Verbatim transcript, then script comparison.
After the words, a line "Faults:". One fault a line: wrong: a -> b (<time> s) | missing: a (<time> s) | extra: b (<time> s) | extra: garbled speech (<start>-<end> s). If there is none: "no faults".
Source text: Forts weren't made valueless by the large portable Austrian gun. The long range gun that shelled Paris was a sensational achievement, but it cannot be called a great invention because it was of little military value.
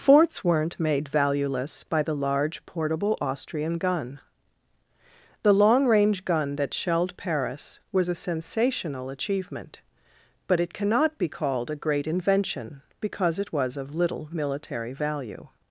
Forts weren't made valueless by the large portable Austrian gun. The long range gun that shelled Paris was a sensational achievement, but it cannot be called a great invention because it was of little military value.
Faults:
no faults